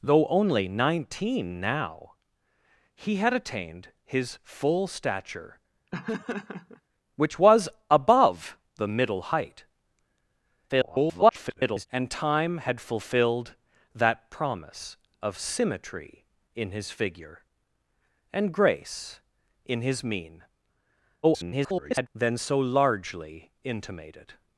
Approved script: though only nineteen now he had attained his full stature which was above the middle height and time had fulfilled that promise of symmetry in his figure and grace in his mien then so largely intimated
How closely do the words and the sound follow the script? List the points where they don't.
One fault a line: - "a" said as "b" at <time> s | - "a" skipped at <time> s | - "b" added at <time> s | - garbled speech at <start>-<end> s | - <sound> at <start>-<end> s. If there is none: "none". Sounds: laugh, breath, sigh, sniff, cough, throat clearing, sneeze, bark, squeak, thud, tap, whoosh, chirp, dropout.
- laugh at 5.9-6.8 s
- garbled speech at 10.7-11.9 s
- garbled speech at 21.2-22.1 s